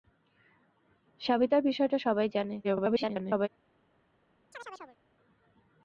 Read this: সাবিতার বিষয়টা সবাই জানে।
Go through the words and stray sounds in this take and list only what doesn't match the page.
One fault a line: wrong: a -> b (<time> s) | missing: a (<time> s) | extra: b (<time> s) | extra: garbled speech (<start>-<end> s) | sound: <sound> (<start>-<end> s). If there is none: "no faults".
extra: garbled speech (2.6-3.5 s)
sound: chirp (4.5-5.0 s)